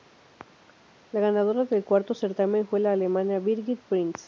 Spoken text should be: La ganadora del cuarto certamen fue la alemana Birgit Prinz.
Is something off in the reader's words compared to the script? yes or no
no